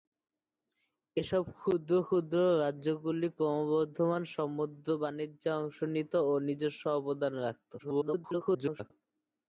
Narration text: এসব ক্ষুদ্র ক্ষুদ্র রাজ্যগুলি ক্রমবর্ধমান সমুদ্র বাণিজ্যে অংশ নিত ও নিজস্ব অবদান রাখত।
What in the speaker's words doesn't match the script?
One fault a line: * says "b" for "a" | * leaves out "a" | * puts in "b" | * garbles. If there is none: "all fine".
* garbles